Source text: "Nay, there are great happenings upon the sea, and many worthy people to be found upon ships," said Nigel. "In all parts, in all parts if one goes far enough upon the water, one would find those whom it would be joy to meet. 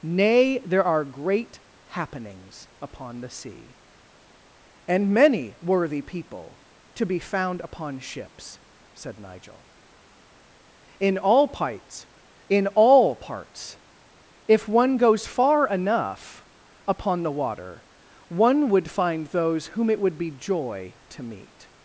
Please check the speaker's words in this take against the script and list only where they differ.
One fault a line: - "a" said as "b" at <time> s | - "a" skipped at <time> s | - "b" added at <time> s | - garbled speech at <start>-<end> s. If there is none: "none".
none